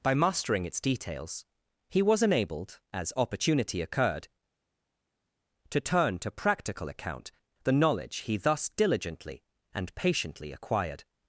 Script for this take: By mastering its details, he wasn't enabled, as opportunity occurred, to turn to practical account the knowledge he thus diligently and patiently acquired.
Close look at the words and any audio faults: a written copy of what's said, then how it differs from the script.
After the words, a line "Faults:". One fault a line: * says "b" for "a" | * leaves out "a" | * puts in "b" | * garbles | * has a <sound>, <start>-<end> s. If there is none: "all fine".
By mastering its details, he was enabled, as opportunity occurred, to turn to practical account the knowledge he thus diligently and patiently acquired.
Faults:
* says "was" for "wasn't"